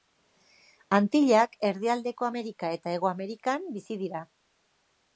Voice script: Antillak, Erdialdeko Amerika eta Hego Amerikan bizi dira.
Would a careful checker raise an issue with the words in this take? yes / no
no